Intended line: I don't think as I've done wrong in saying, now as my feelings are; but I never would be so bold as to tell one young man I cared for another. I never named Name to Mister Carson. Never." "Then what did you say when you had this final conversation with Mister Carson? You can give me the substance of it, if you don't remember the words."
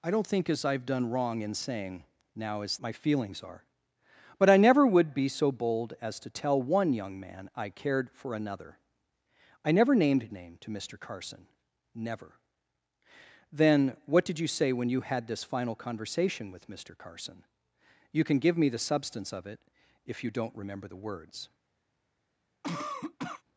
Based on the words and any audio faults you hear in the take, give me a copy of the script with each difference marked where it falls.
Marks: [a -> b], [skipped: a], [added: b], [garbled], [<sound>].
I don't think as I've done wrong in saying, now as my feelings are; but I never would be so bold as to tell one young man I cared for another. I never named Name to Mister Carson. Never." "Then what did you say when you had this final conversation with Mister Carson? You can give me the substance of it, if you don't remember the words." [cough]